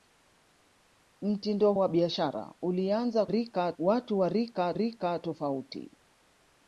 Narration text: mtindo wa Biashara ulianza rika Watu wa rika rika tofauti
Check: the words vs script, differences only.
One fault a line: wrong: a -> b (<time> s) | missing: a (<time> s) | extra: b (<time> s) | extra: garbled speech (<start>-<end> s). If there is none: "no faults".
no faults